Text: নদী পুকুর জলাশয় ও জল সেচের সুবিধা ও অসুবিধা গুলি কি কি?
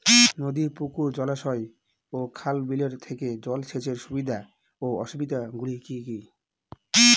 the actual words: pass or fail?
fail